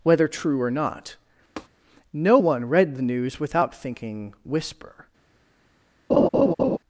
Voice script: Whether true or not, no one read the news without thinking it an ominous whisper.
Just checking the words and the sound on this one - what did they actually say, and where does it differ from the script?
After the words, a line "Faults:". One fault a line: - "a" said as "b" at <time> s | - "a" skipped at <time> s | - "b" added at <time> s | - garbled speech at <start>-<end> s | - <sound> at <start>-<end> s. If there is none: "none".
Whether true or not, no one read the news without thinking whisper.
Faults:
- tap at 1.6-1.7 s
- "it an ominous" skipped at 4.3 s
- laugh at 6.1-6.8 s